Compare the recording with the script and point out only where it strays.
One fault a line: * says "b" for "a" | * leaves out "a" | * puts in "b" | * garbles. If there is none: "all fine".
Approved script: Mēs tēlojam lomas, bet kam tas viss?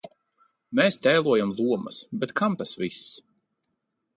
all fine